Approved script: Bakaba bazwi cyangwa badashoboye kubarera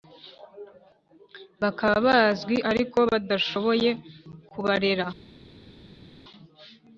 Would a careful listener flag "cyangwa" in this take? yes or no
yes